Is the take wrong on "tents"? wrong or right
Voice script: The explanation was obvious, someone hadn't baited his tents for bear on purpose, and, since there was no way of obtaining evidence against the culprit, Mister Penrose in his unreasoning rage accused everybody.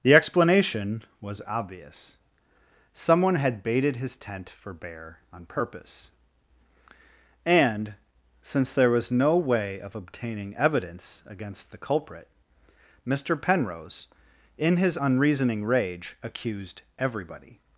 wrong